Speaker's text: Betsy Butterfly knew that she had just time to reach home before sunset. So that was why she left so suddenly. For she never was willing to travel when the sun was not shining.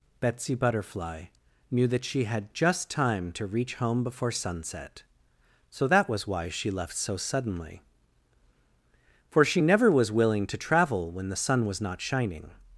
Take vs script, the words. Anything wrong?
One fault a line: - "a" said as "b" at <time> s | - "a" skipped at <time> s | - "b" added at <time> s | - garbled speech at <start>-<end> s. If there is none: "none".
none